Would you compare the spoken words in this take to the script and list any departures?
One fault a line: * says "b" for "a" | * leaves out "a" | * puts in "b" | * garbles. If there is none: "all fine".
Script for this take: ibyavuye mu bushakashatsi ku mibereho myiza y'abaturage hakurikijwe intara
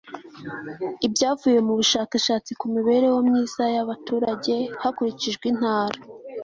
all fine